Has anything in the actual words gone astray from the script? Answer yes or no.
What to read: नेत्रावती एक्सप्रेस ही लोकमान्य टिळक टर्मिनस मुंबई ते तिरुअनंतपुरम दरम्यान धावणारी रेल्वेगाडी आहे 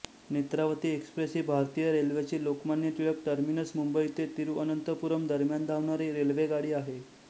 yes